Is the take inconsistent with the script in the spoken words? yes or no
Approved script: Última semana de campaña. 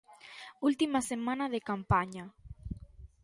no